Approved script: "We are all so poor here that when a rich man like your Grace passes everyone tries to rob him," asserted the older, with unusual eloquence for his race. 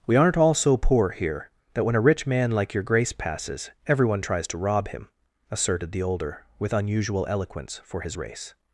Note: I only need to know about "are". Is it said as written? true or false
false